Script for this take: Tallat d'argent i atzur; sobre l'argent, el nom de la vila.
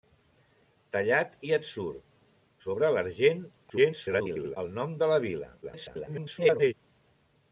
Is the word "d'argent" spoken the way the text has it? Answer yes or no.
no